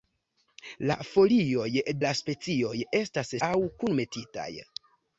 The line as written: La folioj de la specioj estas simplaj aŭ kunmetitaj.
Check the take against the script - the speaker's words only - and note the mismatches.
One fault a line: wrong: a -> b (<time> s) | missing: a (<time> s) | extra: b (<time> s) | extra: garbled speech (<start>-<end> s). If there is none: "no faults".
missing: de (1.6 s)
missing: simplaj (3.3 s)